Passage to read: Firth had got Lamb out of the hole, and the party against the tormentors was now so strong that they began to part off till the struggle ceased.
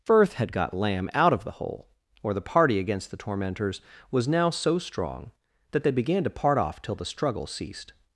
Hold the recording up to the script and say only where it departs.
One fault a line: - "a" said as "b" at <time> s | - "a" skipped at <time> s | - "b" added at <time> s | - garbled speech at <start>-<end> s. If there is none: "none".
- "and" said as "or" at 2.2 s